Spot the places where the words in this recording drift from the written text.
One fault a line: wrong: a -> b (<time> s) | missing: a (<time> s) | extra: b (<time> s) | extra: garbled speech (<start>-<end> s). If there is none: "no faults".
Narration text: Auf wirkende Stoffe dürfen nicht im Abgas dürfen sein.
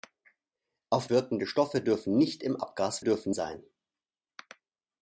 no faults